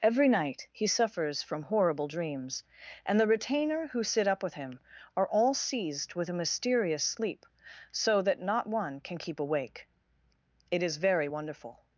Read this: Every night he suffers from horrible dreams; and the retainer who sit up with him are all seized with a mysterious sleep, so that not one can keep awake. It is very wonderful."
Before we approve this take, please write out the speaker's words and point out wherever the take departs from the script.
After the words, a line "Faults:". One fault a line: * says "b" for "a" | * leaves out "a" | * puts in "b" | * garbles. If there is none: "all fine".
Every night he suffers from horrible dreams; and the retainer who sit up with him are all seized with a mysterious sleep, so that not one can keep awake. It is very wonderful."
Faults:
all fine